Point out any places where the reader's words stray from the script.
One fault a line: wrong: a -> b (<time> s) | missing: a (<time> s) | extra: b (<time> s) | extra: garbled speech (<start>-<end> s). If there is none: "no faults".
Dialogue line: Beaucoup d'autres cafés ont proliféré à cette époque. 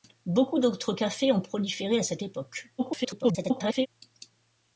extra: garbled speech (2.8-3.9 s)